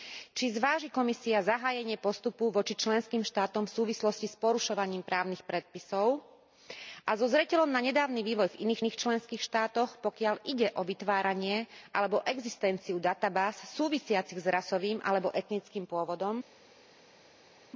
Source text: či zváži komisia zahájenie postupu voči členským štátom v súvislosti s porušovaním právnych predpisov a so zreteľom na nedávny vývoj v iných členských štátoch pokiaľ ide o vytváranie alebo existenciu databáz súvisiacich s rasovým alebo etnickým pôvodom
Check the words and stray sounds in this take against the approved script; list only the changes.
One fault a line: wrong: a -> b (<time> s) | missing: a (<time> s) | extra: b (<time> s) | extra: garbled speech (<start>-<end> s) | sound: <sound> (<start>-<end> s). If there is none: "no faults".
extra: iných (8.8 s)